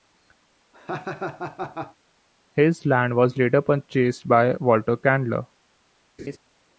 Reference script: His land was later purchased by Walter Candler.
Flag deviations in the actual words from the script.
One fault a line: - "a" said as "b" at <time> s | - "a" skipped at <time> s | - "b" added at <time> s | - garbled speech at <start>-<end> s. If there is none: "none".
none